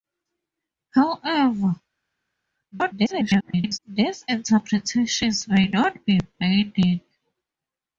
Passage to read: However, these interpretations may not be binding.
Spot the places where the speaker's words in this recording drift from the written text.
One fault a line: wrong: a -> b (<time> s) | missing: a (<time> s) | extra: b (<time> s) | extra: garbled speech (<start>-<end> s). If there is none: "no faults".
extra: garbled speech (2.7-3.8 s)